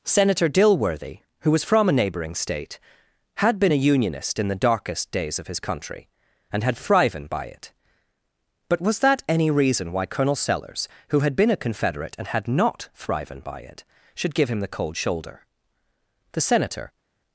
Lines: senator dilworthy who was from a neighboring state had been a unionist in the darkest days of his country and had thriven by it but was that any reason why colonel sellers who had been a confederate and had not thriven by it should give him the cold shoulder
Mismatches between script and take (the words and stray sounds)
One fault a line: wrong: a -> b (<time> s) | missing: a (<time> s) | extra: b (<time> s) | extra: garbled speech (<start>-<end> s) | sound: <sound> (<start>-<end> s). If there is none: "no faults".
extra: the senator (16.3 s)